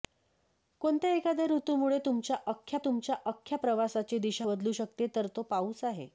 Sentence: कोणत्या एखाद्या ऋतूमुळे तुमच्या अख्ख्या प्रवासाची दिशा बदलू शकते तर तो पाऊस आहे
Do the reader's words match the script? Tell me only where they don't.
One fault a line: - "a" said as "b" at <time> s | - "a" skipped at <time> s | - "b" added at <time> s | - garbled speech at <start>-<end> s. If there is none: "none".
- "तुमच्या अख्ख्या" added at 2.8 s